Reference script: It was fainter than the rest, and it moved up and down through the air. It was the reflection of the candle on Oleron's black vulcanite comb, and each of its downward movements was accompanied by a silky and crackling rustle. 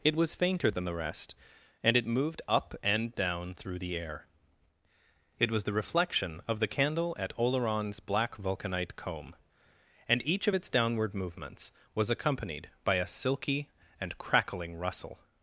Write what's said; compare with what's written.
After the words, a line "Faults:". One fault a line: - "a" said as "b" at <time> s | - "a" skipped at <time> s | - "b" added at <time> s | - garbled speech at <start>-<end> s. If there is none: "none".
It was fainter than the rest, and it moved up and down through the air. It was the reflection of the candle at Oleron's black vulcanite comb, and each of its downward movements was accompanied by a silky and crackling rustle.
Faults:
- "on" said as "at" at 7.2 s